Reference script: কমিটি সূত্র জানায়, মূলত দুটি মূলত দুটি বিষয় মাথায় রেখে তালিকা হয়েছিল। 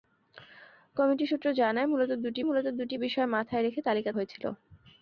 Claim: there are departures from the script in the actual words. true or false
false